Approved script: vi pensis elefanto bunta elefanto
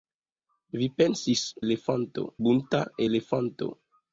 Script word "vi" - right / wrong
right